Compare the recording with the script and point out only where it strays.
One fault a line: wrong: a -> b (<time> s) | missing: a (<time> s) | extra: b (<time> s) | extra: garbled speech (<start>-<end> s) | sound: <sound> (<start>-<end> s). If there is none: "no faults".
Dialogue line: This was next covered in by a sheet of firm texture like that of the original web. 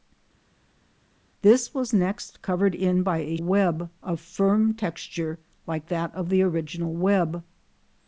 wrong: sheet -> web (3.4 s)